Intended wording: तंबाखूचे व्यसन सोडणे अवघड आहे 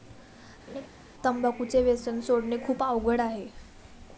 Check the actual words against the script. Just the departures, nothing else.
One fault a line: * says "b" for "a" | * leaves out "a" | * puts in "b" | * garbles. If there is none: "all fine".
* puts in "खूप"